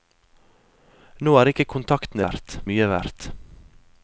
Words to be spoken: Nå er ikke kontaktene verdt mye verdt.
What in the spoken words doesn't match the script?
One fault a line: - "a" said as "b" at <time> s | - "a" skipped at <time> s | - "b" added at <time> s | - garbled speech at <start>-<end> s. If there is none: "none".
none